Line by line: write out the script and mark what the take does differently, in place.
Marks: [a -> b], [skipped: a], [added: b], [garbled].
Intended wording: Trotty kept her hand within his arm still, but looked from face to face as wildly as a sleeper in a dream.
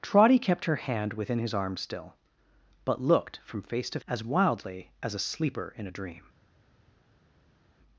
Trotty kept her hand within his arm still, but looked from face to [skipped: face] as wildly as a sleeper in a dream.